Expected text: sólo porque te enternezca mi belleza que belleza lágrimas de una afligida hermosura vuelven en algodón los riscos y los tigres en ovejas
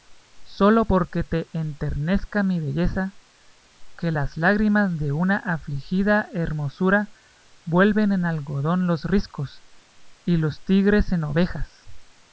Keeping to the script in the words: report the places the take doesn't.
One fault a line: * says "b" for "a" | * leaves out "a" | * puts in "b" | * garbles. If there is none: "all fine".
* says "las" for "belleza"